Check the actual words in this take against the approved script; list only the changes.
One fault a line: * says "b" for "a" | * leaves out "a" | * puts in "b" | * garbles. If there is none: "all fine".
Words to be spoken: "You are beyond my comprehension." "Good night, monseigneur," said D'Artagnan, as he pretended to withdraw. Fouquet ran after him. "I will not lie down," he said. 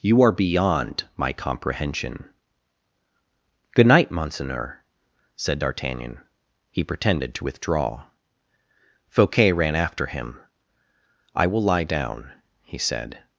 * leaves out "as"
* leaves out "not"